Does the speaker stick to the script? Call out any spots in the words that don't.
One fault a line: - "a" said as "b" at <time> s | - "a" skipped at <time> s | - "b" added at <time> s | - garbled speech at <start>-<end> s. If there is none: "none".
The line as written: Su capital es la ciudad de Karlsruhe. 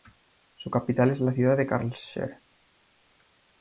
none